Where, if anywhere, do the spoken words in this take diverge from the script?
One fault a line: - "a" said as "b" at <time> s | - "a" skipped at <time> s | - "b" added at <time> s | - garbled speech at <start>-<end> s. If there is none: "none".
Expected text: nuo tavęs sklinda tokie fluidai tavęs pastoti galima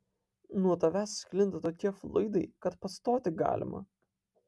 - "tavęs" said as "kad" at 2.7 s